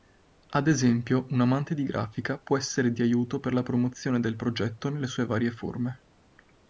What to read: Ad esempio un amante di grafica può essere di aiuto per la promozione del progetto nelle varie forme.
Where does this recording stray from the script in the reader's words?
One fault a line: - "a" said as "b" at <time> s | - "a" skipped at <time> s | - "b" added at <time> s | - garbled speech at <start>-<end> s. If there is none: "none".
- "sue" added at 5.0 s